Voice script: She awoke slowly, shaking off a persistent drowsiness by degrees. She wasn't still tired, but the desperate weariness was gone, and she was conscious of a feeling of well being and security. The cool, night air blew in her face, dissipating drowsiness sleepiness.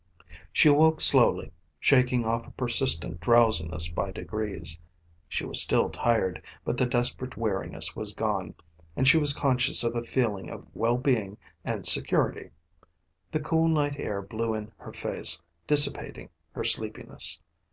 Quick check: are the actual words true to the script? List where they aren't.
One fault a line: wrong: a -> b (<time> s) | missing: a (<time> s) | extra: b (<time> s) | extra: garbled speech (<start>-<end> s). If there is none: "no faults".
wrong: wasn't -> was (5.4 s)
wrong: drowsiness -> her (16.5 s)